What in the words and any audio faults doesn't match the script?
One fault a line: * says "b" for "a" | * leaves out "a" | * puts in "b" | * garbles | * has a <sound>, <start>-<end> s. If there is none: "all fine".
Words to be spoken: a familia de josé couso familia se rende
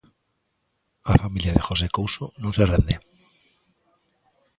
* says "non" for "familia"